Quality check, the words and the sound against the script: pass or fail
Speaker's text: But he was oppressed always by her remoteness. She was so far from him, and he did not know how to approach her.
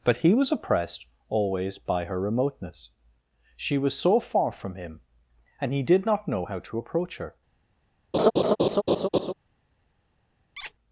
fail